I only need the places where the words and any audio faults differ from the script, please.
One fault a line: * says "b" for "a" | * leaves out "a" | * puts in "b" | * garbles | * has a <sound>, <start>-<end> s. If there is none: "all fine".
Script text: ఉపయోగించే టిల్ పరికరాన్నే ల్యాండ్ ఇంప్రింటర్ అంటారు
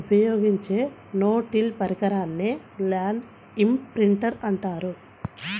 * puts in "నో"